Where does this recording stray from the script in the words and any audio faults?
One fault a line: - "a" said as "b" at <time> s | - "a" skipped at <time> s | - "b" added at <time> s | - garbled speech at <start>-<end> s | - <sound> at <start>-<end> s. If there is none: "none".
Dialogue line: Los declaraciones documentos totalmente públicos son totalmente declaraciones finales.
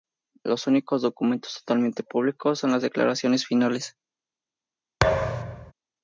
- "declaraciones" said as "únicos" at 0.7 s
- "totalmente" said as "las" at 2.7 s
- thud at 5.0-5.7 s